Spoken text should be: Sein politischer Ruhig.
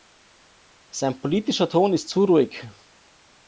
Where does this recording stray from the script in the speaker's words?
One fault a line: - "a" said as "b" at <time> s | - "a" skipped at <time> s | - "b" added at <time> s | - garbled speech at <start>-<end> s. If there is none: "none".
- "Ton ist zu" added at 1.7 s